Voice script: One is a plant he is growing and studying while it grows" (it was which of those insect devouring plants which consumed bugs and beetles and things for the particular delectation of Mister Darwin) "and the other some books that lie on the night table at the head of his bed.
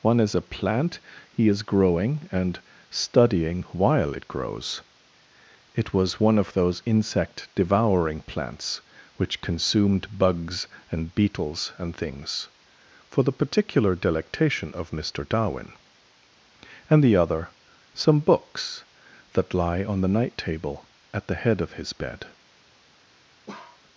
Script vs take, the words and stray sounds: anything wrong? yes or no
yes